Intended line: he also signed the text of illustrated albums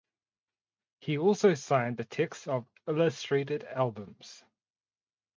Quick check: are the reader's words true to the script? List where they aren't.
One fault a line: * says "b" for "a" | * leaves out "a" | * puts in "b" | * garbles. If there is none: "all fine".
all fine